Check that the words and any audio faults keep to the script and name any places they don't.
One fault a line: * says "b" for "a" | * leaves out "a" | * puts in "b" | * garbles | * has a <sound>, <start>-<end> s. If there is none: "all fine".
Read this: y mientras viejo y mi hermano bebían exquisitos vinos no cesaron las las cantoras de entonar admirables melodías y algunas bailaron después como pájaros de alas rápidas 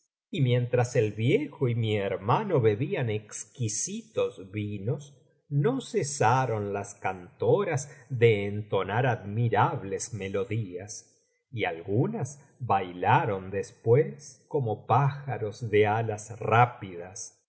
* puts in "el"
* leaves out "las"